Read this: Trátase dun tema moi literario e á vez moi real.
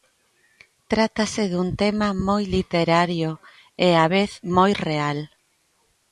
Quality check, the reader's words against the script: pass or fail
pass